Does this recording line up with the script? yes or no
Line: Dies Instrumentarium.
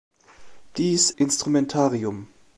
yes